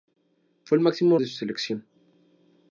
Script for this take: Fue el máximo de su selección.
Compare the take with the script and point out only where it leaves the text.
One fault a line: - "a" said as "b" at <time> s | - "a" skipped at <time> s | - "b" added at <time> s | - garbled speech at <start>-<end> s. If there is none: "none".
none